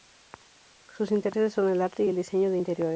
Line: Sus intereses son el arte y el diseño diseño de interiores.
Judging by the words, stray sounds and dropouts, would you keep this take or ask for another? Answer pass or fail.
fail